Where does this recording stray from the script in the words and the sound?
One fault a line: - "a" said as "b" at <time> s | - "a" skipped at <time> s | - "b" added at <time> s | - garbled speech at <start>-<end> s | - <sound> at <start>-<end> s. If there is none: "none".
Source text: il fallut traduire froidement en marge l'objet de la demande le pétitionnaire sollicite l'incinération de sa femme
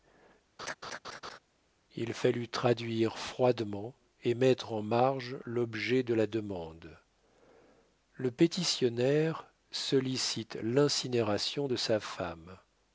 - laugh at 0.6-1.4 s
- "et mettre" added at 4.2 s